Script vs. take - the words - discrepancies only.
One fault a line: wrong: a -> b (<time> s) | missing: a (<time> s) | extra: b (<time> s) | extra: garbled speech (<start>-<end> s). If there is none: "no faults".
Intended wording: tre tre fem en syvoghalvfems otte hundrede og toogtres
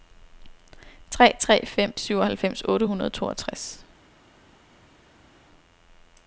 missing: en (1.9 s)